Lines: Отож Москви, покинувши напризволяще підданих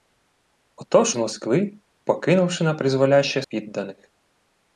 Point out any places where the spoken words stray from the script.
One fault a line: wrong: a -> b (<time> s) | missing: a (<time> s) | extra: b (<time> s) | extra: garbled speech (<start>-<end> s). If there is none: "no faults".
no faults